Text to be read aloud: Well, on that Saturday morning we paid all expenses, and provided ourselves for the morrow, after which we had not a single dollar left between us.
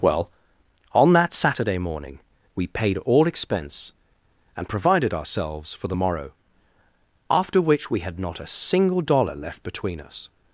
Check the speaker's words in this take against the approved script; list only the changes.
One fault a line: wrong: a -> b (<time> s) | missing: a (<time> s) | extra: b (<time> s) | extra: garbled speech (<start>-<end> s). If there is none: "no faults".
wrong: expenses -> expense (3.3 s)